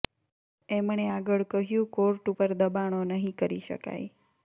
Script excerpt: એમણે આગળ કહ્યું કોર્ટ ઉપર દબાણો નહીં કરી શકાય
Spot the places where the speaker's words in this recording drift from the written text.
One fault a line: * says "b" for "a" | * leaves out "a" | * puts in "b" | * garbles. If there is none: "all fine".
all fine